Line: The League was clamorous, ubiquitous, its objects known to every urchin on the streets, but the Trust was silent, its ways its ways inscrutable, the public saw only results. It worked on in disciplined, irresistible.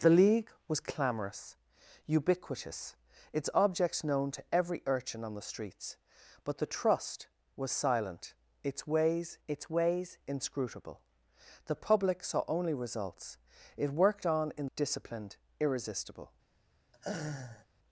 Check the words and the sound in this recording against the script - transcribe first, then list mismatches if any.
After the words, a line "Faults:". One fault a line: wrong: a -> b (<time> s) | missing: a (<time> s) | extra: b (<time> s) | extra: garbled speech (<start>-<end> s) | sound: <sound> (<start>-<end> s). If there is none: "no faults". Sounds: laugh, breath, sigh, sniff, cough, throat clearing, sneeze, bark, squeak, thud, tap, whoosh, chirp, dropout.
The League was clamorous, ubiquitous, its objects known to every urchin on the streets, but the Trust was silent, its ways its ways inscrutable, the public saw only results. It worked on in disciplined, irresistible.
Faults:
sound: laugh (16.9-17.7 s)